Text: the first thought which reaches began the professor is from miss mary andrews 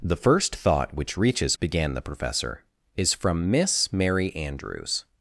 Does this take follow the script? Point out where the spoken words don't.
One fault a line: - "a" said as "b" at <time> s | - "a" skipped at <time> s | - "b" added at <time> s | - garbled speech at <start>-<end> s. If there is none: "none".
none